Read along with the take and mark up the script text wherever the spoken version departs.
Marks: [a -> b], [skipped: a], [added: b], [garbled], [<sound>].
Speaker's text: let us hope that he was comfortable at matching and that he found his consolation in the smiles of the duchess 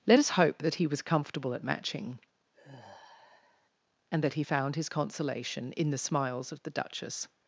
let us hope that he was comfortable at matching [sigh] and that he found his consolation in the smiles of the duchess